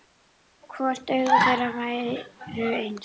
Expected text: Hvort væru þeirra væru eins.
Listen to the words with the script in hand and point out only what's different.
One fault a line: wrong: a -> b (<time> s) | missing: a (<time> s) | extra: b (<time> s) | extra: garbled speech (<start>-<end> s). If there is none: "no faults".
wrong: væru -> augu (1.2 s)